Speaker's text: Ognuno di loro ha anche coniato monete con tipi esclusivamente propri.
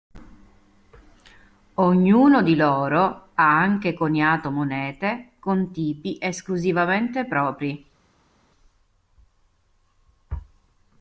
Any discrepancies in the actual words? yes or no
no